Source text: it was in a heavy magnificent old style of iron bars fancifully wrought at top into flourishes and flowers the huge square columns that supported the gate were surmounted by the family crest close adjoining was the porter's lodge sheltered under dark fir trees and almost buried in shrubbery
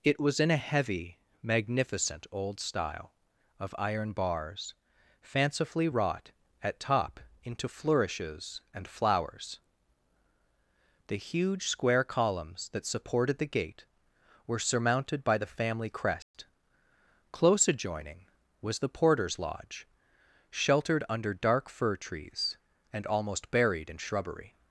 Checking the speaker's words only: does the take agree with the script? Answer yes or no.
yes